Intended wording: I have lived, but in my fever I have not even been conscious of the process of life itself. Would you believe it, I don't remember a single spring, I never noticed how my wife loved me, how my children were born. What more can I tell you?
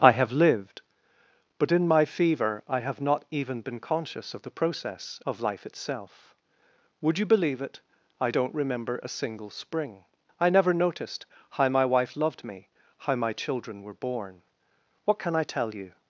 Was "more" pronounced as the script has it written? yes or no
no